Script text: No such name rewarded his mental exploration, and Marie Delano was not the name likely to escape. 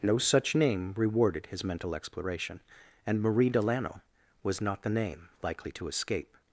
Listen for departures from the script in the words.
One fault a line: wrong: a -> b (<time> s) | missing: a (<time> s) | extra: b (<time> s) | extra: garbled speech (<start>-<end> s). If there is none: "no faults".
no faults